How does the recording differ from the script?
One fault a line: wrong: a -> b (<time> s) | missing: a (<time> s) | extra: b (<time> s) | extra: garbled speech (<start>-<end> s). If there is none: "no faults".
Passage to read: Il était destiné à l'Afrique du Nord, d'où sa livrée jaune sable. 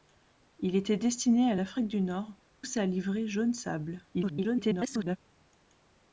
missing: d'où (2.3 s)
extra: garbled speech (4.1-5.2 s)